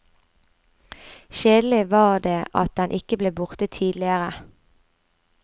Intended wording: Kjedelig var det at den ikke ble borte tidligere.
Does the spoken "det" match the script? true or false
true